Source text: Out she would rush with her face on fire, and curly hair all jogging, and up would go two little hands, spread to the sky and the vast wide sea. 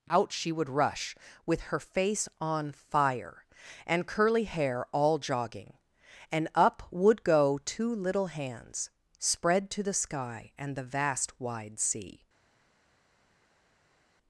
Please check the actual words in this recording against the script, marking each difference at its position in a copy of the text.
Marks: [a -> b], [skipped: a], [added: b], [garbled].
Out she would rush with her face on fire, and curly hair all jogging, and up would go two little hands, spread to the sky and the vast wide sea.